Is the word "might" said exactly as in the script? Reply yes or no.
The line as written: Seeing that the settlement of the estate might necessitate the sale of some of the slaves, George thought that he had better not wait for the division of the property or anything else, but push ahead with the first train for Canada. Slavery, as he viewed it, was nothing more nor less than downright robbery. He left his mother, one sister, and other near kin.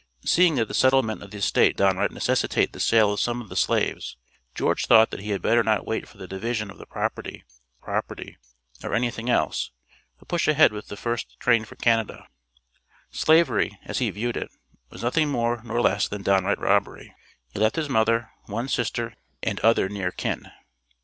no